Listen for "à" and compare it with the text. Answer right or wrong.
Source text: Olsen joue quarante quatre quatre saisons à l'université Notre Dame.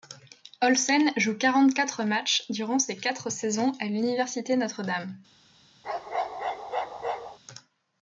right